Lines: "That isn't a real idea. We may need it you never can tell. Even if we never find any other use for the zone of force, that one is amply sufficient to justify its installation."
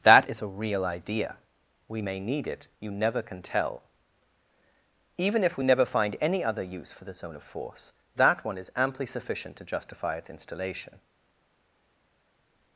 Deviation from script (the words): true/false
true